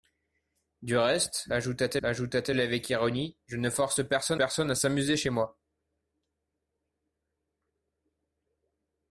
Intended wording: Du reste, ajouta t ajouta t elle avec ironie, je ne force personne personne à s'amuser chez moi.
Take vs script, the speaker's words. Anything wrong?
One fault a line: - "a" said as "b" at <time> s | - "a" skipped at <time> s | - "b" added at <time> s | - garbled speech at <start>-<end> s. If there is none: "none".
none